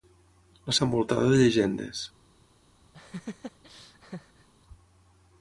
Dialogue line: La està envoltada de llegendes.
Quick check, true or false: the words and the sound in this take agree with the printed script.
false